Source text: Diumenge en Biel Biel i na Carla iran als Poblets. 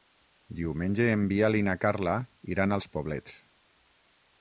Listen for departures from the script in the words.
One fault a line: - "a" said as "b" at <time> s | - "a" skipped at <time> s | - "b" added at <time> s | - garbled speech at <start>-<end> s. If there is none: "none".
- "Biel" skipped at 1.6 s